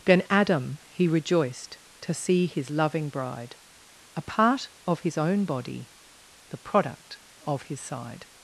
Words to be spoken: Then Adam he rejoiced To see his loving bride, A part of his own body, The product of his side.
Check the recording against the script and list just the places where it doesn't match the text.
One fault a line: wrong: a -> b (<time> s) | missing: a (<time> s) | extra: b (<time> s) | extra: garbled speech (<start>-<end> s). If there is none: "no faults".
no faults